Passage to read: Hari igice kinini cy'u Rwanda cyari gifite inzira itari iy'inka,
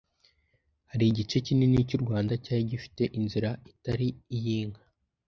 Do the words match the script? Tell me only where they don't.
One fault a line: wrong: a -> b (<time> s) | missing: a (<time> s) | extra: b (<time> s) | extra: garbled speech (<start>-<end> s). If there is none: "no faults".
no faults